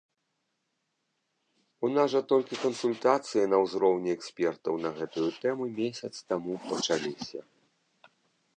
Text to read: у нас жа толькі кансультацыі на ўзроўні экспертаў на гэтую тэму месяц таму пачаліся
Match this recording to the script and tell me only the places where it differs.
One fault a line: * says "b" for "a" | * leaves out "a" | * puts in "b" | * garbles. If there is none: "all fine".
all fine